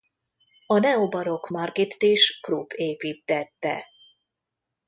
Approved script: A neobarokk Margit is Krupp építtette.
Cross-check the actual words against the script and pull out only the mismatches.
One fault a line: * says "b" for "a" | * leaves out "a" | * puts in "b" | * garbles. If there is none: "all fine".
all fine